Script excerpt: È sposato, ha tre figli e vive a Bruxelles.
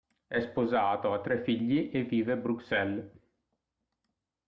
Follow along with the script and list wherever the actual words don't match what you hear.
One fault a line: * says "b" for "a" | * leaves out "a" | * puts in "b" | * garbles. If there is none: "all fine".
all fine